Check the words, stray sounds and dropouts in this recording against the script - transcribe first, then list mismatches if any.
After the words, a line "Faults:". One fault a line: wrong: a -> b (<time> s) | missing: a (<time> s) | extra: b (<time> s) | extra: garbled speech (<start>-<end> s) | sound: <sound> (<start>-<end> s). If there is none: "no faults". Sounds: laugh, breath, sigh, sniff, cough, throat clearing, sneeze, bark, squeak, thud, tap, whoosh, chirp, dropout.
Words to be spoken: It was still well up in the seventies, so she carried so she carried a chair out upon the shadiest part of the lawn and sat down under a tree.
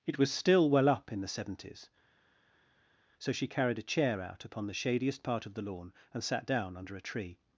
It was still well up in the seventies, so she carried a chair out upon the shadiest part of the lawn and sat down under a tree.
Faults:
missing: so she carried (3.8 s)